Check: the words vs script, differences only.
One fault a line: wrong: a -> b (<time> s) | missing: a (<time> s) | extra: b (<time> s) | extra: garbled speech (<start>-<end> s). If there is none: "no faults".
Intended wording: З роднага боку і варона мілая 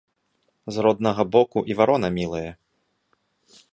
no faults